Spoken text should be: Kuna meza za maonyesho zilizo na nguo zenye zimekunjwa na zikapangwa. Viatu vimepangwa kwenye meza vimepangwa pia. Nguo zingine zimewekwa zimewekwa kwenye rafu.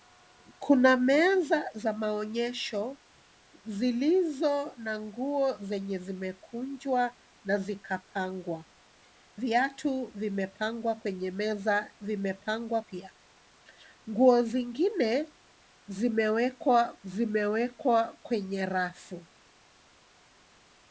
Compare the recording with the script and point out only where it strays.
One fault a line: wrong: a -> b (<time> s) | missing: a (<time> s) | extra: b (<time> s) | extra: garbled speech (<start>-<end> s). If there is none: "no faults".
no faults